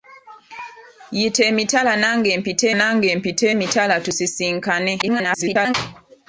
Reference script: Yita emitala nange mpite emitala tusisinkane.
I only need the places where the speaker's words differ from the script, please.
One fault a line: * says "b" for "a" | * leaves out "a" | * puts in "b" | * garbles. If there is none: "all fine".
* puts in "nange mpite"
* garbles